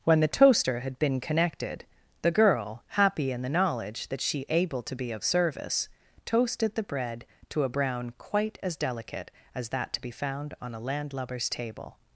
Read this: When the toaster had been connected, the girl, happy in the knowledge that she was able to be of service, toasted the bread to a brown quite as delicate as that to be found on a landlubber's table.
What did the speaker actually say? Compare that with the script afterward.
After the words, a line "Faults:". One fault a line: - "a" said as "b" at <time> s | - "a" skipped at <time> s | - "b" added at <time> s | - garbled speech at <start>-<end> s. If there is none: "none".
When the toaster had been connected, the girl, happy in the knowledge that she able to be of service, toasted the bread to a brown quite as delicate as that to be found on a landlubber's table.
Faults:
- "was" skipped at 4.5 s